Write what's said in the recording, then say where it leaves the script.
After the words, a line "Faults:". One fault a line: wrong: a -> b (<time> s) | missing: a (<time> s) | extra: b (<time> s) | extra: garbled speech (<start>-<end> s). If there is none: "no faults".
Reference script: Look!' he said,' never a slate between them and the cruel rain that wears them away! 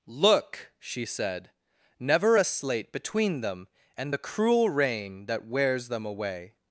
Look!' she said,' never a slate between them and the cruel rain that wears them away!
Faults:
wrong: he -> she (0.8 s)